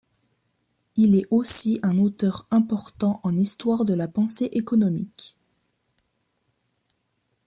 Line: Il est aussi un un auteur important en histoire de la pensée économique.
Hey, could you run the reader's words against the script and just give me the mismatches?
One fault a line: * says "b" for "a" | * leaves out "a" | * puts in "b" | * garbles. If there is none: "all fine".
* leaves out "un"